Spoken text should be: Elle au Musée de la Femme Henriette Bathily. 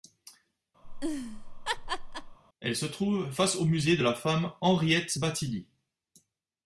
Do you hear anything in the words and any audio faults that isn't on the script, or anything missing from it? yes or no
yes